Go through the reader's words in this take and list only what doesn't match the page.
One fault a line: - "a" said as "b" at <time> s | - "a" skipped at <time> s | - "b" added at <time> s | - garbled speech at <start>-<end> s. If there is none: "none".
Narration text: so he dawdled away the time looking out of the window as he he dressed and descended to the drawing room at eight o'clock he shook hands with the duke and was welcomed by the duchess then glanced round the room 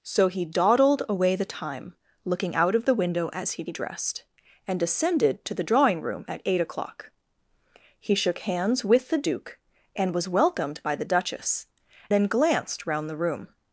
none